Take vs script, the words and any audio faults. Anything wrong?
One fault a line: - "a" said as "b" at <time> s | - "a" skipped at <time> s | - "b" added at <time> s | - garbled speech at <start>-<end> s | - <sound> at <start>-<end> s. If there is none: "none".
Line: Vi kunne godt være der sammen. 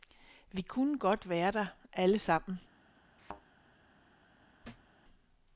- "alle" added at 1.9 s
- thud at 3.2-3.4 s
- thud at 4.6-4.9 s